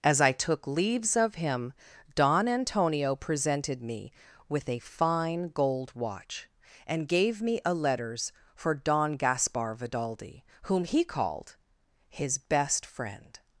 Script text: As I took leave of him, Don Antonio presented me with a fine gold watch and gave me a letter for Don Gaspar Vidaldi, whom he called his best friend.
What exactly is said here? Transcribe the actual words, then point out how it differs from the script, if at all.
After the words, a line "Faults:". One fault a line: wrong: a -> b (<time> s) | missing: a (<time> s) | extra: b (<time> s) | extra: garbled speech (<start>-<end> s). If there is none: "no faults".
As I took leaves of him, Don Antonio presented me with a fine gold watch and gave me a letters for Don Gaspar Vidaldi, whom he called his best friend.
Faults:
wrong: leave -> leaves (0.7 s)
wrong: letter -> letters (7.7 s)